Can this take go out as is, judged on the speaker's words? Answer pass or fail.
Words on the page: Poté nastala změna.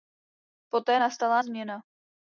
pass